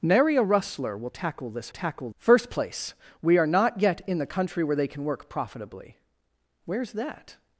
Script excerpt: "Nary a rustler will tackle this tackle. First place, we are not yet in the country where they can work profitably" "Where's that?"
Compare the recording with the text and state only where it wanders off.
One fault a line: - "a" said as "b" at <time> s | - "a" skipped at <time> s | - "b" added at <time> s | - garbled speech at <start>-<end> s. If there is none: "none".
none